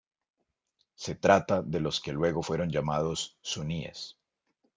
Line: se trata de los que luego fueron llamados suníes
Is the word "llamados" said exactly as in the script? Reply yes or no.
yes